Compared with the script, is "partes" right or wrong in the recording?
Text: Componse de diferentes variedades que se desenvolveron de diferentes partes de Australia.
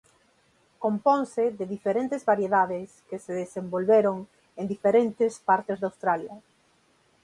right